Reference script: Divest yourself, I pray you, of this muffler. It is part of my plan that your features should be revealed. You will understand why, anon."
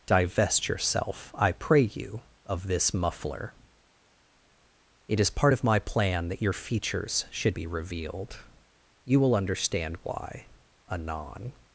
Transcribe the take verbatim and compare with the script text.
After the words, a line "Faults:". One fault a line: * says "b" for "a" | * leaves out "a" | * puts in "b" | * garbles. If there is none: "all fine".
Divest yourself, I pray you, of this muffler. It is part of my plan that your features should be revealed. You will understand why, anon."
Faults:
all fine